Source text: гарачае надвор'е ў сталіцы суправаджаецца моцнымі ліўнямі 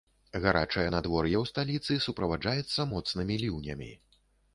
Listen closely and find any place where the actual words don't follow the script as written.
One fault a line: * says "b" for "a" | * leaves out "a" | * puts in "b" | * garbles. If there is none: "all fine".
all fine